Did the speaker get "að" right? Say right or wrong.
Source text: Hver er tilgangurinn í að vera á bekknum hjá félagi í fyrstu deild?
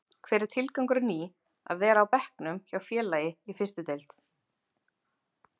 right